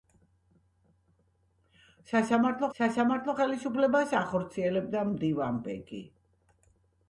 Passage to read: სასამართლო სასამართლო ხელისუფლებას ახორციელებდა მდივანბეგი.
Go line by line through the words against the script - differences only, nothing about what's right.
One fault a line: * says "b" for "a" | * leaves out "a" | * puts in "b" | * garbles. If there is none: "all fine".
all fine